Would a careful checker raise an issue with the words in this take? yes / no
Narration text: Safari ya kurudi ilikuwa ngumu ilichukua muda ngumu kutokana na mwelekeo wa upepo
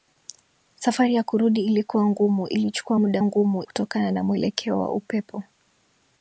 no